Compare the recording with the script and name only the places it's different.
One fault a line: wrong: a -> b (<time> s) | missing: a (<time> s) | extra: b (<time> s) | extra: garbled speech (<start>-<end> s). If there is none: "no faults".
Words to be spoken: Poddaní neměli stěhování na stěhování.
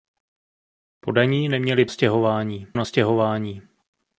no faults